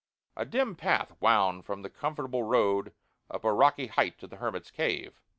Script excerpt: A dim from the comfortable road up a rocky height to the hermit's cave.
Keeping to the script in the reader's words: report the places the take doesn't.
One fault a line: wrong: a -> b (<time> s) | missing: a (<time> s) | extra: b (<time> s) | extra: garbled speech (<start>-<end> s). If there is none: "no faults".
extra: path wound (0.8 s)